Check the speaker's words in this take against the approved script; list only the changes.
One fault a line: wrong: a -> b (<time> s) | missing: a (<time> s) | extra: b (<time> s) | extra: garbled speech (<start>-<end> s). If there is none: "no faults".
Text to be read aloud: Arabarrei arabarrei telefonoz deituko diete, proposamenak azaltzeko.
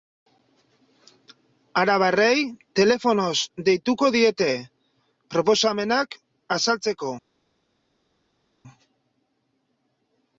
missing: arabarrei (2.4 s)